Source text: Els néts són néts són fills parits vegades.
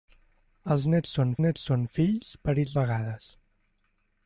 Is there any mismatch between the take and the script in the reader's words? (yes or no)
no